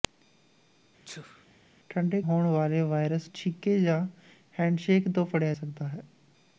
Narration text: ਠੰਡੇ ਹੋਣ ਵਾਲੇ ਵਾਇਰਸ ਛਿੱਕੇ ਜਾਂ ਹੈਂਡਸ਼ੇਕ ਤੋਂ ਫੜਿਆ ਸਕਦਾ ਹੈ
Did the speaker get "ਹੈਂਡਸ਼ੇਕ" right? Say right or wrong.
right